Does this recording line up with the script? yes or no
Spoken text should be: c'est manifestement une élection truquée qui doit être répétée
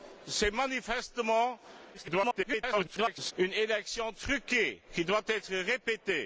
no